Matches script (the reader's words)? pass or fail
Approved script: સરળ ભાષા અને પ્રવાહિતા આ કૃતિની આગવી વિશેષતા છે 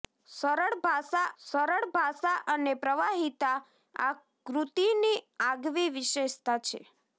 fail